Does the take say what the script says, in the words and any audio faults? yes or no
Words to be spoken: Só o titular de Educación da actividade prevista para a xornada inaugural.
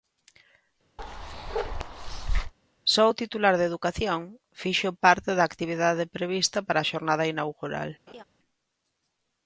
no